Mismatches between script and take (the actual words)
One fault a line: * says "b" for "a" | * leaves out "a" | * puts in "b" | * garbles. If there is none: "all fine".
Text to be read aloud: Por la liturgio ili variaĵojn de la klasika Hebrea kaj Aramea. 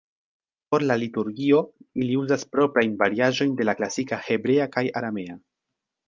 * puts in "uzas proprajn"